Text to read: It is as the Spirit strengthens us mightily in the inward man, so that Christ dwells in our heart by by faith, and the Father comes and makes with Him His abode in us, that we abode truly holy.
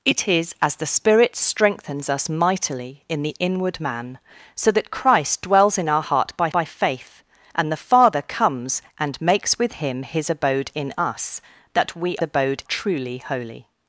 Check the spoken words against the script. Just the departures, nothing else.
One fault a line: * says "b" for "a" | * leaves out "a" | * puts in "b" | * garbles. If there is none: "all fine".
all fine